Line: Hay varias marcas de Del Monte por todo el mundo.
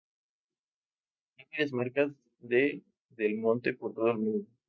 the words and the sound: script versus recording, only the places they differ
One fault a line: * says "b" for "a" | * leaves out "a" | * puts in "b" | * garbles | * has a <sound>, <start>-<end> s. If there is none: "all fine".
all fine